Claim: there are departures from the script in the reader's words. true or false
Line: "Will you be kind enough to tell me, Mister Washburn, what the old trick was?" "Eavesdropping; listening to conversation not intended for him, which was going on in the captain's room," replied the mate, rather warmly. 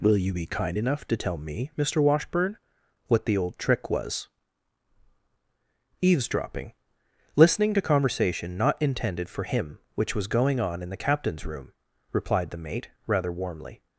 false